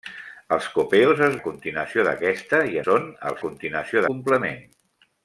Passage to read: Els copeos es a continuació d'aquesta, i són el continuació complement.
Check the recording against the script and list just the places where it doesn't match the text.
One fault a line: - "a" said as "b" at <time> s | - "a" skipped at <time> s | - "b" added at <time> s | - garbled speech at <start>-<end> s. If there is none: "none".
none